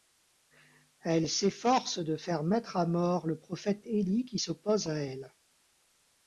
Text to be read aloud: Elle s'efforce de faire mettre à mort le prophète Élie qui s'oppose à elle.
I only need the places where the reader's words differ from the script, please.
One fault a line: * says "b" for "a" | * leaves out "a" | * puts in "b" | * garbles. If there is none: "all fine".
all fine